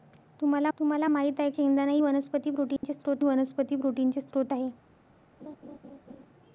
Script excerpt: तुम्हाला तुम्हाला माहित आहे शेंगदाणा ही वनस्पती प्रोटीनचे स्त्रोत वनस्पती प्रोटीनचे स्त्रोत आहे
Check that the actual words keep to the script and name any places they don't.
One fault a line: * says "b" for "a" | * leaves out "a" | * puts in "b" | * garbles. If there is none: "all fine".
all fine